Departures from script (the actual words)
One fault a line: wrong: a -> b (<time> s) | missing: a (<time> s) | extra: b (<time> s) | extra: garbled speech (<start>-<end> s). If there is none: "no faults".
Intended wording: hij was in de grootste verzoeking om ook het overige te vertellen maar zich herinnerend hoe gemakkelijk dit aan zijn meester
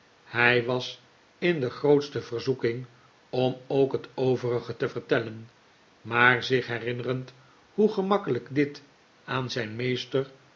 no faults